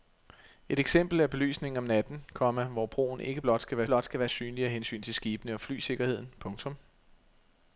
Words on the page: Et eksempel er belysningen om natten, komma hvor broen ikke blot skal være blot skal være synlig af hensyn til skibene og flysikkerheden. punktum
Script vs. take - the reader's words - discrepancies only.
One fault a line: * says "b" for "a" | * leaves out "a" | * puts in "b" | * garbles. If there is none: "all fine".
all fine